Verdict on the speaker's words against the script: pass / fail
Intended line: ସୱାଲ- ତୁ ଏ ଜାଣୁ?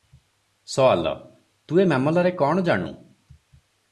fail